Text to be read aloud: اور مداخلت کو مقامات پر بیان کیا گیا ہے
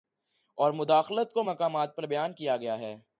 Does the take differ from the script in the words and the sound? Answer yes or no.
no